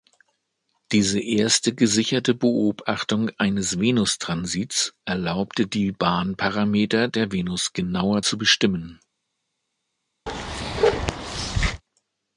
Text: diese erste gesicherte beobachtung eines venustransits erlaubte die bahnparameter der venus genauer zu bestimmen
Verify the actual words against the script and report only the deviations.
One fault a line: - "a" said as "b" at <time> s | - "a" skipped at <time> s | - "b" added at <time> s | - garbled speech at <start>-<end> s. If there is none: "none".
none